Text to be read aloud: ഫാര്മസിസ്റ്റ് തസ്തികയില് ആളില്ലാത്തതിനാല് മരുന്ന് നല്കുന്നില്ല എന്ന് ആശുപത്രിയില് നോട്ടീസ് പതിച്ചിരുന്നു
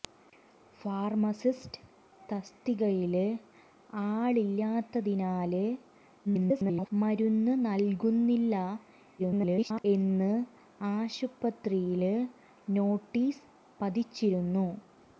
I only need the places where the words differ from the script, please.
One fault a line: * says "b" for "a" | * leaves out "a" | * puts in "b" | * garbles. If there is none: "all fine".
* garbles
* garbles